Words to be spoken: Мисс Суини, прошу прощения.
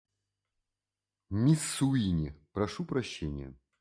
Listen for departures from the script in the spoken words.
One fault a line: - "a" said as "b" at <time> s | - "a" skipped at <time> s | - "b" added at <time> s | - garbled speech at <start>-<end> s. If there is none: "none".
none